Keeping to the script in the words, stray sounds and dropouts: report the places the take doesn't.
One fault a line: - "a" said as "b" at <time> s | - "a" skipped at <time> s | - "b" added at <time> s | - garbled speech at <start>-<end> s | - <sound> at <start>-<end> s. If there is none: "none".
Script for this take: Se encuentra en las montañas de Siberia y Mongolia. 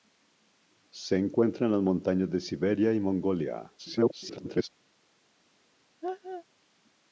- garbled speech at 3.8-4.7 s
- laugh at 6.0-6.4 s